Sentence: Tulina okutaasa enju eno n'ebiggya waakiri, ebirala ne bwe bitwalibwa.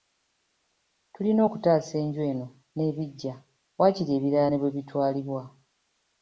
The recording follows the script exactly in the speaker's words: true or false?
true